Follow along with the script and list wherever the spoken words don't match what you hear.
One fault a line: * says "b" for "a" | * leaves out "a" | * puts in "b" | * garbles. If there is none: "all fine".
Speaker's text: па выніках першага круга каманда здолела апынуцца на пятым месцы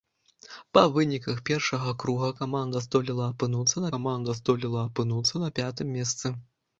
* puts in "каманда здолела апынуцца"